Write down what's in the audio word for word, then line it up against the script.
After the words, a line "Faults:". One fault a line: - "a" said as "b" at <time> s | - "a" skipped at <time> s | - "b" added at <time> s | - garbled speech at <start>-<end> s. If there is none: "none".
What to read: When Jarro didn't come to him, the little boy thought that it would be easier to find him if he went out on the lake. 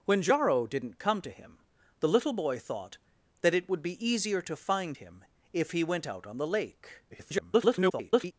When Jarro didn't come to him, the little boy thought that it would be easier to find him if he went out on the lake. [garbled]
Faults:
- garbled speech at 7.1-8.3 s